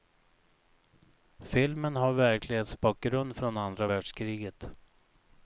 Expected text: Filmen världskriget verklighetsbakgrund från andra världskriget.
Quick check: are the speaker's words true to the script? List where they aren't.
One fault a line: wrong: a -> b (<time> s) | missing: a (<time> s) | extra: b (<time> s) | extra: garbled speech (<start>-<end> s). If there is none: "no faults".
wrong: världskriget -> har (1.9 s)